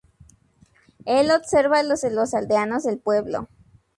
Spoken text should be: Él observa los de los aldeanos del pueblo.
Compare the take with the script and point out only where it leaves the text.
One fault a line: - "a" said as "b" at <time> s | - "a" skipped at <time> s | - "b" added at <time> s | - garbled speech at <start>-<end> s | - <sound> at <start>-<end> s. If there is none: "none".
none